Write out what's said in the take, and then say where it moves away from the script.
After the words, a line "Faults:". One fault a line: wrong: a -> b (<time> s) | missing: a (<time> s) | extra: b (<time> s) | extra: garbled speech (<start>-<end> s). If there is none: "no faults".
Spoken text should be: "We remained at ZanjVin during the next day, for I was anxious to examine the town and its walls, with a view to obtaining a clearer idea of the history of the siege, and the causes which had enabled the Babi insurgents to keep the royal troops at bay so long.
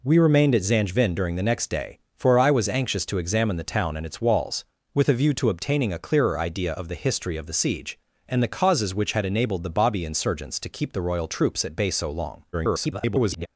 "We remained at ZanjVin during the next day, for I was anxious to examine the town and its walls, with a view to obtaining a clearer idea of the history of the siege, and the causes which had enabled the Babi insurgents to keep the royal troops at bay so long. [garbled]
Faults:
extra: garbled speech (12.5-13.5 s)